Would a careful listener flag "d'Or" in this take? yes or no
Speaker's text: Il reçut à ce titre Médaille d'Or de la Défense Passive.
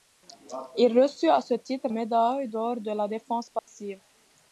no